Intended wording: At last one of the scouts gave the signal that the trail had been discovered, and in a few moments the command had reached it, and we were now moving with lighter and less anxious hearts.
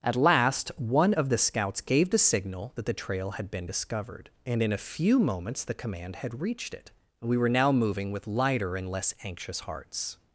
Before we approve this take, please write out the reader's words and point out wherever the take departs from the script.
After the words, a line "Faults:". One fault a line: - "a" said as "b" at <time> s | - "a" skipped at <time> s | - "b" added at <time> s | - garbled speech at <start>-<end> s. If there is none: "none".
At last one of the scouts gave the signal that the trail had been discovered, and in a few moments the command had reached it, we were now moving with lighter and less anxious hearts.
Faults:
- "and" skipped at 6.9 s